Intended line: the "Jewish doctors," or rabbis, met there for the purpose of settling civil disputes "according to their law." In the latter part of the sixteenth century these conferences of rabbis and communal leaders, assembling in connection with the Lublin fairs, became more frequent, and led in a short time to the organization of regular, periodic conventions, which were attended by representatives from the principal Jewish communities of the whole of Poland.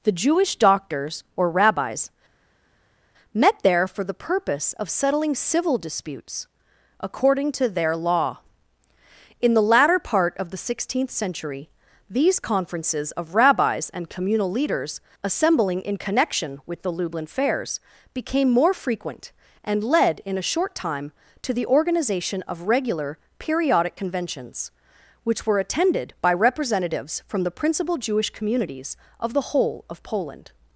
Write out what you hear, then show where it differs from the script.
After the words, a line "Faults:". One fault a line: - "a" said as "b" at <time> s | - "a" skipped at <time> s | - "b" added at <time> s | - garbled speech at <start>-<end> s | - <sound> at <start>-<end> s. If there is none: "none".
the "Jewish doctors," or rabbis, met there for the purpose of settling civil disputes "according to their law." In the latter part of the sixteenth century these conferences of rabbis and communal leaders, assembling in connection with the Lublin fairs, became more frequent, and led in a short time to the organization of regular, periodic conventions, which were attended by representatives from the principal Jewish communities of the whole of Poland.
Faults:
none